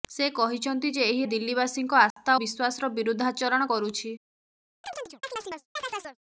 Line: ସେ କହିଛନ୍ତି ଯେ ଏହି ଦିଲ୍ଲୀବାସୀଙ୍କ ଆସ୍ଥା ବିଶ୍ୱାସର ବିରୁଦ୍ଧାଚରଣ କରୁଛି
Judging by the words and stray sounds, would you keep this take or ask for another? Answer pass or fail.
fail